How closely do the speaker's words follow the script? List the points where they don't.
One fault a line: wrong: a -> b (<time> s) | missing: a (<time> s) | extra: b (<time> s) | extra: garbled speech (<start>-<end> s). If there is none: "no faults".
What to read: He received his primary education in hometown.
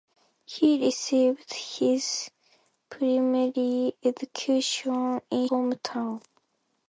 no faults